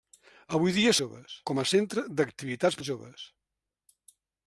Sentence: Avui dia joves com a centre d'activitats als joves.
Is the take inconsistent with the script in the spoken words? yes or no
no